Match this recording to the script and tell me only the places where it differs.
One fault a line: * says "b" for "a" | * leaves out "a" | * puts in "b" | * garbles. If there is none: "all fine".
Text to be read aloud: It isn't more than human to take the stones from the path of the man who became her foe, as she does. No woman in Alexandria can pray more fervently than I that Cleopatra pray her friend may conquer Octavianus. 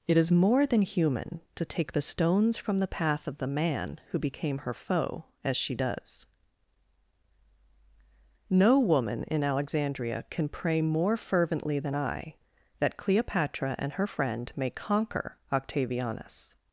* says "is" for "isn't"
* says "and" for "pray"